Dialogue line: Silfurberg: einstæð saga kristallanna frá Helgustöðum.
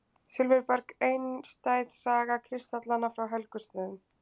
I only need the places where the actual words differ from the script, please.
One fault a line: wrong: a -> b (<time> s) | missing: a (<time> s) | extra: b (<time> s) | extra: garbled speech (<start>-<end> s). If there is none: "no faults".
no faults